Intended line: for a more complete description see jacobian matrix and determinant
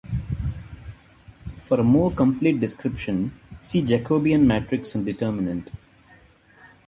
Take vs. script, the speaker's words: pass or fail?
pass